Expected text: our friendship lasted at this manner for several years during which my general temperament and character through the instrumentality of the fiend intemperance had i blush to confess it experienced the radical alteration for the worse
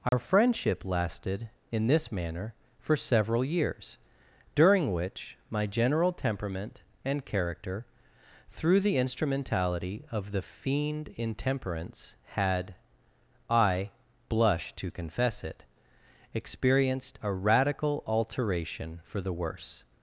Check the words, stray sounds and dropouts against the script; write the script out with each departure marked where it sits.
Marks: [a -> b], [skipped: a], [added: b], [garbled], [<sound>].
our [dropout] friendship lasted [at -> in] this manner for several years during which my general temperament and character through the instrumentality of the fiend intemperance had i blush to confess it experienced [the -> a] radical alteration for the worse